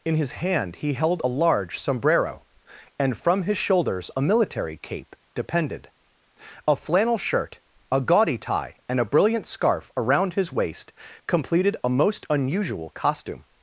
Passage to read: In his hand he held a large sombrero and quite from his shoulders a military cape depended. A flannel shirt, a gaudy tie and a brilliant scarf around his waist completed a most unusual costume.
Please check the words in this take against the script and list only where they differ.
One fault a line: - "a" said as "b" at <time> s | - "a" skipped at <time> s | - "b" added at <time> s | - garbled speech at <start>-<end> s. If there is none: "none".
- "quite" skipped at 3.2 s